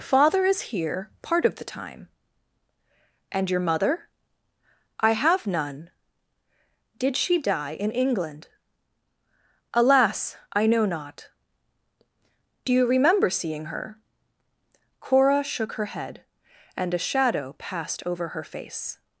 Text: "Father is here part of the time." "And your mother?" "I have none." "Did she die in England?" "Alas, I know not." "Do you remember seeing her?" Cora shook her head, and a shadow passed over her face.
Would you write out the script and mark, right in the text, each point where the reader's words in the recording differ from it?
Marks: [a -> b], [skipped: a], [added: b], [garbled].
"Father is here part of the time." "And your mother?" "I have none." "Did she die in England?" "Alas, I know not." "Do you remember seeing her?" Cora shook her head, and a shadow passed over her face.